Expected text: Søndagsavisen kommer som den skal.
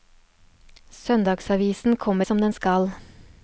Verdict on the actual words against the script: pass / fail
pass